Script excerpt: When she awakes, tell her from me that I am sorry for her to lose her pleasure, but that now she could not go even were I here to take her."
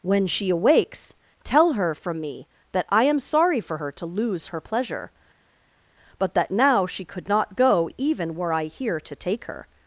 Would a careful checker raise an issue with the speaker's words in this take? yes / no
no